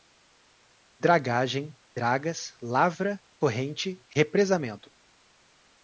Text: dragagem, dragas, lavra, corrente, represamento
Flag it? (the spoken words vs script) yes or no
no